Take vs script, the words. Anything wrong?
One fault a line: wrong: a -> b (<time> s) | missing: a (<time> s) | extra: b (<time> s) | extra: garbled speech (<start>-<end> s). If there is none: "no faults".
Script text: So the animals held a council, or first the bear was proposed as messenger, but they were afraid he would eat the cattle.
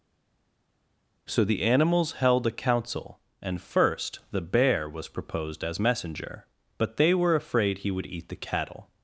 wrong: or -> and (3.4 s)